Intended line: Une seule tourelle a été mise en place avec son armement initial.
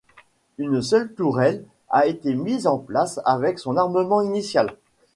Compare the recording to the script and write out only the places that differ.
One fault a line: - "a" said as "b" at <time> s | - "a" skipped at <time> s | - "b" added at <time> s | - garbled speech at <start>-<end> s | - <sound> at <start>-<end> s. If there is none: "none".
none